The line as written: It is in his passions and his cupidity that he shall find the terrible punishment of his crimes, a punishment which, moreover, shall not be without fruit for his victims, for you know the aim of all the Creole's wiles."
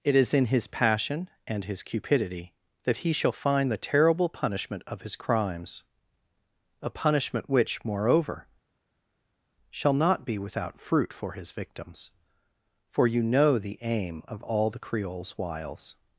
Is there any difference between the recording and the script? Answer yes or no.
yes